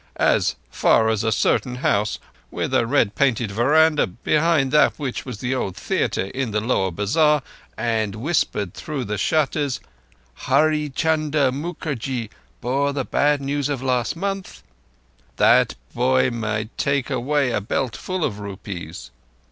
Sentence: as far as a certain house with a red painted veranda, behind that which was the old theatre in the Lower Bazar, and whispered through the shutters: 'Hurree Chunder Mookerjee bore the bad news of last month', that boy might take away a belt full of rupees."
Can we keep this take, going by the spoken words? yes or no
yes